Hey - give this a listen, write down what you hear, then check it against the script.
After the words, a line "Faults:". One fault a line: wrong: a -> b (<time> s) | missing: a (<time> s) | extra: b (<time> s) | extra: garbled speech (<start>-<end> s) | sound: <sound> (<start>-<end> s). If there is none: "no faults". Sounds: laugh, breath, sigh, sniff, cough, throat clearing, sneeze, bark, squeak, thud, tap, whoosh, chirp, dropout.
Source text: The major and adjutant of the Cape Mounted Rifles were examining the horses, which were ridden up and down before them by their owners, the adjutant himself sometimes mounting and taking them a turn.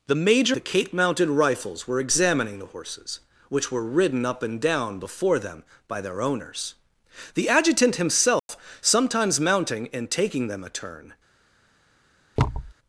The major the Cape Mounted Rifles were examining the horses, which were ridden up and down before them by their owners, the adjutant himself sometimes mounting and taking them a turn.
Faults:
missing: and adjutant of (0.6 s)
sound: dropout (8.4-8.5 s)
sound: thud (12.4-12.7 s)